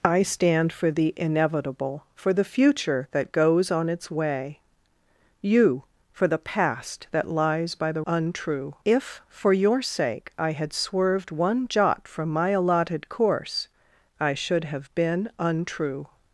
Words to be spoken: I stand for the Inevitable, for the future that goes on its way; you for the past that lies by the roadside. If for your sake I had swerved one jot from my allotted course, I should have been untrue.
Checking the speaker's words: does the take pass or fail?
fail